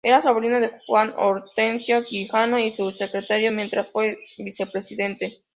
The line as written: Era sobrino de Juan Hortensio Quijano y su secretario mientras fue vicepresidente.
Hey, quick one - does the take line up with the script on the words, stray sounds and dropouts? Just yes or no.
yes